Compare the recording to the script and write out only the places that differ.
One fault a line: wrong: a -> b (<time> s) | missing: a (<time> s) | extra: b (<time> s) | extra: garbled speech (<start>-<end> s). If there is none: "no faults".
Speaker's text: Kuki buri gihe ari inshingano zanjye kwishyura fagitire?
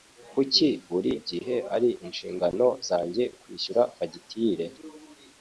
no faults